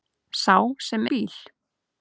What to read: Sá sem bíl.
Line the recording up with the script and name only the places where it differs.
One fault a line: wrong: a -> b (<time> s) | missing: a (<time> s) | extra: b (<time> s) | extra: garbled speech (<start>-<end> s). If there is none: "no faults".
no faults